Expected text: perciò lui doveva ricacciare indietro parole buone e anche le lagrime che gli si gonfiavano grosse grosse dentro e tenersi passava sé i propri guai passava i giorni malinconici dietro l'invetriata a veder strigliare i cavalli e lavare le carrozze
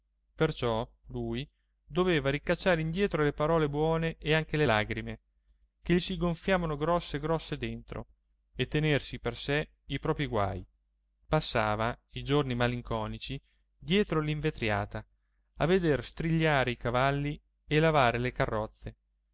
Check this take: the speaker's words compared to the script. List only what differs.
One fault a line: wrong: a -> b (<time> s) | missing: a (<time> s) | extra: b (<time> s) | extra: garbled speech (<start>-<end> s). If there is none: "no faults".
extra: le (3.2 s)
wrong: passava -> per (9.2 s)